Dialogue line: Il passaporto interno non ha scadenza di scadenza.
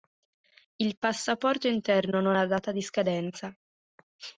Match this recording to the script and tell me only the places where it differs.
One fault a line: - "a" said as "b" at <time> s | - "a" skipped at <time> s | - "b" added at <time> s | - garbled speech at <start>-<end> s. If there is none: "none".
- "scadenza" said as "data" at 2.5 s